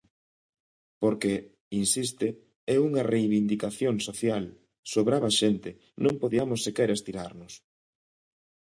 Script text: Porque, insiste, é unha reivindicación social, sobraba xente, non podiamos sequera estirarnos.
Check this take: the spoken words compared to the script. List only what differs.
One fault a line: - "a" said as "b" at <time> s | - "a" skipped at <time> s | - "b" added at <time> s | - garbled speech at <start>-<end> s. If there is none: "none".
none